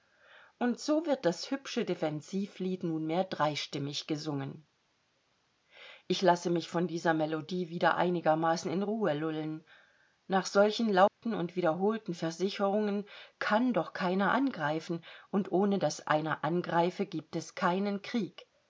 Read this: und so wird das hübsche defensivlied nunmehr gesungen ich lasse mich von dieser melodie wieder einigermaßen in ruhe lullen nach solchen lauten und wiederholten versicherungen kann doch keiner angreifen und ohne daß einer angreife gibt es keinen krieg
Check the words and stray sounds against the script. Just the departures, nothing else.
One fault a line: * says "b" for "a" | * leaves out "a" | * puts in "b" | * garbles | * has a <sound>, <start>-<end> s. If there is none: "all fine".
* puts in "dreistimmig"
* has a dropout, 11.1-11.2 s